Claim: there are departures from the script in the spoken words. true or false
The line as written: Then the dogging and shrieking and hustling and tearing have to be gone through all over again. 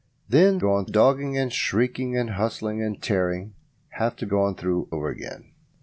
true